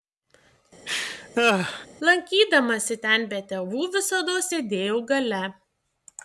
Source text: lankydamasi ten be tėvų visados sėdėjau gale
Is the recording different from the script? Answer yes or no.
no